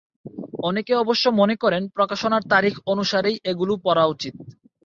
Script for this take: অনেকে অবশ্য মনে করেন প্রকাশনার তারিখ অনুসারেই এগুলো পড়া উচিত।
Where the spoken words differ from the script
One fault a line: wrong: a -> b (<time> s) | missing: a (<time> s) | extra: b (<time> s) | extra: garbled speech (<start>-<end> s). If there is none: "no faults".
no faults